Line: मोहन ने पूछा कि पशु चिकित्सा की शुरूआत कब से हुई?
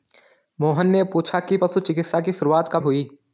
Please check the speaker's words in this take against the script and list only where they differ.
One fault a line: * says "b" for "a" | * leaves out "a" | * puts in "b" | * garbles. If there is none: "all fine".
* leaves out "से"